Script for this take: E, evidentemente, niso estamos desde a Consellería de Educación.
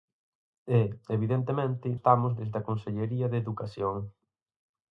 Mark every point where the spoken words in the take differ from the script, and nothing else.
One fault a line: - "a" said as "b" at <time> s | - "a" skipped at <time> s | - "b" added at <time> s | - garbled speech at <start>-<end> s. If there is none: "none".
- "niso" skipped at 1.9 s